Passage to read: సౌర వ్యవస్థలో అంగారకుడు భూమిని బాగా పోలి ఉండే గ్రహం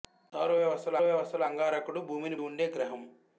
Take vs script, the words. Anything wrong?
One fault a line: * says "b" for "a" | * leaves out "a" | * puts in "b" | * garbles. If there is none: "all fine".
* puts in "వ్యవస్థలో"
* leaves out "బాగా పోలి"